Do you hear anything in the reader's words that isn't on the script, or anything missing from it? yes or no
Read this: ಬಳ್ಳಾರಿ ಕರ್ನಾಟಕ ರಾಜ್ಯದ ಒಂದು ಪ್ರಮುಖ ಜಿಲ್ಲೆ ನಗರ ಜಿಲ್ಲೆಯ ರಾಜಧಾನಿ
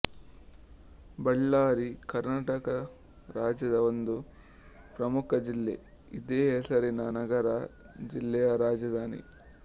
yes